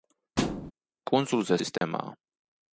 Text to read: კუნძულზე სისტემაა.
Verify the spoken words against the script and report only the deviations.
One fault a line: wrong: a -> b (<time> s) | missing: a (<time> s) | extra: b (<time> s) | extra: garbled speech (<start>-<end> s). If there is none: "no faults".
no faults